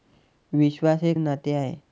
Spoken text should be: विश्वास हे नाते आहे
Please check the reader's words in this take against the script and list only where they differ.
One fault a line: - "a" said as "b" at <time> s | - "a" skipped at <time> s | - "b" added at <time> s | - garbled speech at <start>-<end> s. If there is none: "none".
none